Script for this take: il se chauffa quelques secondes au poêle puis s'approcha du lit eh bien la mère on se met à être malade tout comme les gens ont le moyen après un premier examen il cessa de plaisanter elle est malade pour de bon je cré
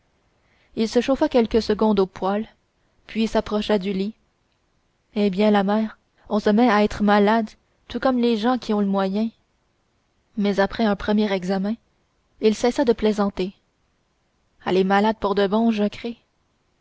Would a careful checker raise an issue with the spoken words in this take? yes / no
yes